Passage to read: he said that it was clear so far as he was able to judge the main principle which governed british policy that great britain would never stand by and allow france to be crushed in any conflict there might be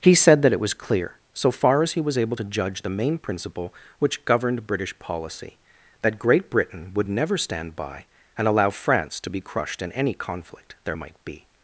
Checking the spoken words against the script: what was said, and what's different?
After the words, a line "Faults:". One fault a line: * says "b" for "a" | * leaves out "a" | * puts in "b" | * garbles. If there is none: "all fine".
he said that it was clear so far as he was able to judge the main principle which governed british policy that great britain would never stand by and allow france to be crushed in any conflict there might be
Faults:
all fine